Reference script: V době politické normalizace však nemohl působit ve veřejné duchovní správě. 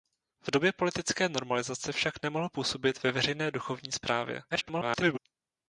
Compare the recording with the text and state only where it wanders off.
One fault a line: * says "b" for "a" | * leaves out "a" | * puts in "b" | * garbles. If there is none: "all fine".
* garbles